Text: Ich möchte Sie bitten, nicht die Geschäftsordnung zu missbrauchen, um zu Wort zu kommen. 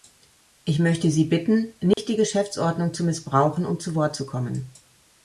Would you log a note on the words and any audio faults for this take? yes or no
yes